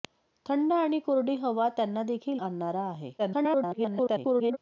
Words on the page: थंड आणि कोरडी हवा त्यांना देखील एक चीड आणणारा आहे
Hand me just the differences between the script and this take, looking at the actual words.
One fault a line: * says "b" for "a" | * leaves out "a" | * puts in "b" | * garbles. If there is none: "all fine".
* leaves out "एक चीड"
* garbles